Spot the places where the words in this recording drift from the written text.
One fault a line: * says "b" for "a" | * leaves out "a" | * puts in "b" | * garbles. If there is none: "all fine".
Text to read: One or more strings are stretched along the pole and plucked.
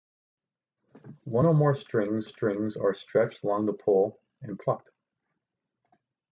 * puts in "strings"